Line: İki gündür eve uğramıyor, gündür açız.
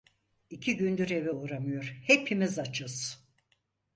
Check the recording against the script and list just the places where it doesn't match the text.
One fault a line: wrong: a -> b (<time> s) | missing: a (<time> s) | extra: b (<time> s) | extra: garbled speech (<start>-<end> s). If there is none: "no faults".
wrong: gündür -> hepimiz (2.0 s)